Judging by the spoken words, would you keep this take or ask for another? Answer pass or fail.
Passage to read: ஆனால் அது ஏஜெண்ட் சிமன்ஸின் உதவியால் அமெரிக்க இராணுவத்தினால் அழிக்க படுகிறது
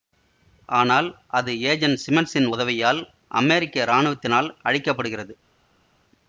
pass